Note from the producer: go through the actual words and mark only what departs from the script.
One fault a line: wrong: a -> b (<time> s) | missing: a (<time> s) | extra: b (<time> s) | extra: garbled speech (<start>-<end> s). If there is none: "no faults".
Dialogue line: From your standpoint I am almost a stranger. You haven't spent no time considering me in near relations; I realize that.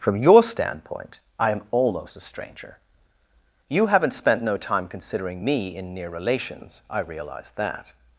no faults